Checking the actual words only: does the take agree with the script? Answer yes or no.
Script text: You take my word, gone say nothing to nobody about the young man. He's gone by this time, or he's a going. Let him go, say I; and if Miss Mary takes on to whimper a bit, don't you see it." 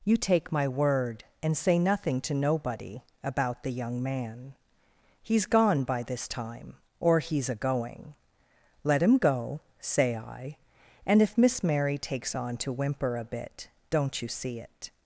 no